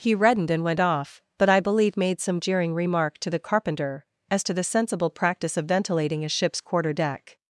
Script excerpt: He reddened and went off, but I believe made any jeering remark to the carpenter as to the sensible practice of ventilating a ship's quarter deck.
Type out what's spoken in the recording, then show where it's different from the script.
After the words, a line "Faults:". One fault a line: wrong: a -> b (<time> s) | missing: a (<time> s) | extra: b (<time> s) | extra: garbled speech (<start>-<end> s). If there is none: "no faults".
He reddened and went off, but I believe made some jeering remark to the carpenter as to the sensible practice of ventilating a ship's quarter deck.
Faults:
wrong: any -> some (2.2 s)